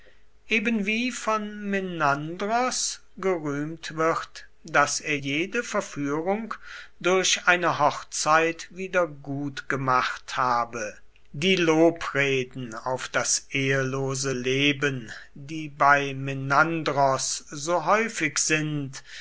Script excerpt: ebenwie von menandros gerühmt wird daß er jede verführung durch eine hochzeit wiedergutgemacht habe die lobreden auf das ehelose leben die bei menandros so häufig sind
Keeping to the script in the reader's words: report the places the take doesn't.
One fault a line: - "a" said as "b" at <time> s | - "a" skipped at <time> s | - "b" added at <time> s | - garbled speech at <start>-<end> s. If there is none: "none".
none